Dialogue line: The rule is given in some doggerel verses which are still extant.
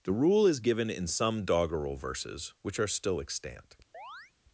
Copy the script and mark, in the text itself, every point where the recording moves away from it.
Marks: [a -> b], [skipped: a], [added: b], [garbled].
The rule is given in some doggerel verses which are still extant.